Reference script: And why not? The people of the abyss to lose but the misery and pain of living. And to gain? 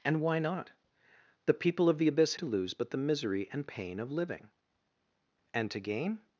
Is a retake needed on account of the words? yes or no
no